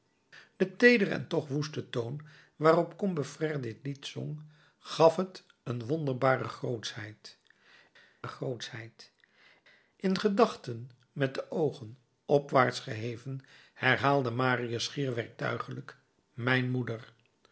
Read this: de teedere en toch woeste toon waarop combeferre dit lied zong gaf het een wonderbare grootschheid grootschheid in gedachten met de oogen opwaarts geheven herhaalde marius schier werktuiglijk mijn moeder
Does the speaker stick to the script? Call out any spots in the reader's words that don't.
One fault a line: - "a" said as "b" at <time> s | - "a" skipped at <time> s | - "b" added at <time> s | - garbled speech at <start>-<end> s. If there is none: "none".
none